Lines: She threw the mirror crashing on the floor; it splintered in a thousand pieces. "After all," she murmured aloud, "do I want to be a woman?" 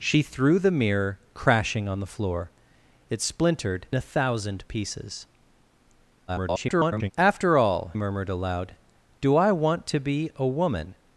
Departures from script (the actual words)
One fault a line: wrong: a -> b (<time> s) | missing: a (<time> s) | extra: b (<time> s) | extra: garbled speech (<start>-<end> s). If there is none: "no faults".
missing: in (3.9 s)
extra: garbled speech (6.3-7.1 s)
missing: she (7.9 s)